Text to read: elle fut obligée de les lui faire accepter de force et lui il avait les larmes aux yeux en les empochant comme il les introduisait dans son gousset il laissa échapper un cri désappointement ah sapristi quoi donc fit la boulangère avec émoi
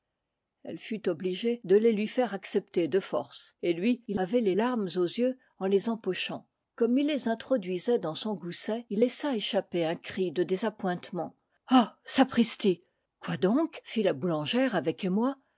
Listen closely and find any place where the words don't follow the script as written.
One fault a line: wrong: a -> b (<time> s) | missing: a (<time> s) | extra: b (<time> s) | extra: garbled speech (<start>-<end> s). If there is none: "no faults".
extra: de (10.3 s)